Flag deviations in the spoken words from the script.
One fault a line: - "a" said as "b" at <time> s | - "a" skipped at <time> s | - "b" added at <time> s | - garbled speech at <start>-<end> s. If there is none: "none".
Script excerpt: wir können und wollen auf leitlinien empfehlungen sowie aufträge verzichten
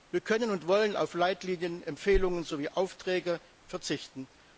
none